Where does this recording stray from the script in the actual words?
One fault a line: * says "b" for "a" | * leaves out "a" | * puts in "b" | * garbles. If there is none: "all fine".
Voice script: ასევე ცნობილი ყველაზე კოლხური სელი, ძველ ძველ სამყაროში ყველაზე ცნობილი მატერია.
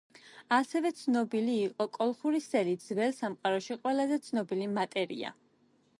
* says "იყო" for "ყველაზე"
* leaves out "ძველ"